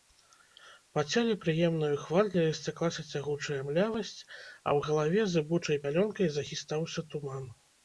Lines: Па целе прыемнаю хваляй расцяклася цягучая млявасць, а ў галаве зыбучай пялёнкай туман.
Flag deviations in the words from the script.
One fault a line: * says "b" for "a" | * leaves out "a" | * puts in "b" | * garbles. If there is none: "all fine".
* puts in "захістаўся"